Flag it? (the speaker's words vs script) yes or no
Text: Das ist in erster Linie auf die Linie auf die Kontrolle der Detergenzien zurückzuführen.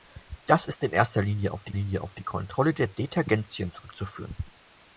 no